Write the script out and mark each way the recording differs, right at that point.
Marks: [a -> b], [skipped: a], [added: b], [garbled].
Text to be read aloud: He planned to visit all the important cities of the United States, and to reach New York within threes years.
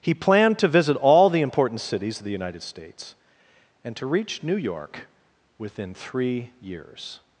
He planned to visit all the important cities of the United States, and to reach New York within [threes -> three] years.